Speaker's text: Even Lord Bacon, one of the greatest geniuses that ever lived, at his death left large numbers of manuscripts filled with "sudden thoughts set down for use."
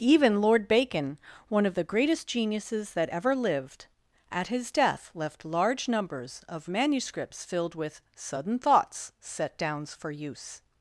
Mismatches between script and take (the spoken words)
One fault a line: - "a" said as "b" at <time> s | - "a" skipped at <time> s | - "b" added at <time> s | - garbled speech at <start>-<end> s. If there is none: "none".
- "down" said as "downs" at 9.6 s